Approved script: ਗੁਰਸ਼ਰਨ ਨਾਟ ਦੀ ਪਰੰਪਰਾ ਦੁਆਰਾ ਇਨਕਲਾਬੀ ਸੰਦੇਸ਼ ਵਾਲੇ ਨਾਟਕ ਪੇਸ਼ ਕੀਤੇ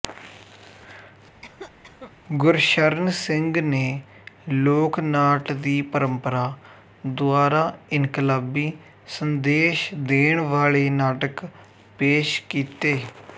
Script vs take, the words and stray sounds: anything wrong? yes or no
yes